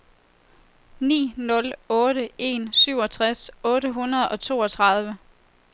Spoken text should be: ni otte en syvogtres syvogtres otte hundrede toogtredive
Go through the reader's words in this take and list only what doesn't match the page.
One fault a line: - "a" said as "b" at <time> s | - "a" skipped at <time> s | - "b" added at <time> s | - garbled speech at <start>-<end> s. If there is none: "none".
- "nul" added at 1.3 s
- "syvogtres" skipped at 3.5 s
- "og" added at 4.3 s